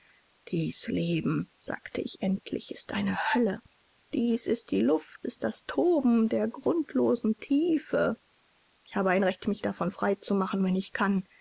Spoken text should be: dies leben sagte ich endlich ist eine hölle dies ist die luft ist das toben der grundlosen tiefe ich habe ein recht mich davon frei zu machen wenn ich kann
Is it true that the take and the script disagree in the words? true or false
false